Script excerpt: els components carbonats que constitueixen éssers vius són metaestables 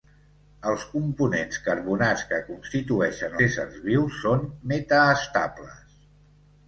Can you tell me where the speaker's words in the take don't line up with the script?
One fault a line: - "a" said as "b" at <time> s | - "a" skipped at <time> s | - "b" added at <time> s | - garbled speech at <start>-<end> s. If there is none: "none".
none